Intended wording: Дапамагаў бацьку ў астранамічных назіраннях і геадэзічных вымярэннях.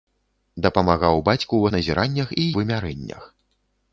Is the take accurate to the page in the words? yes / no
no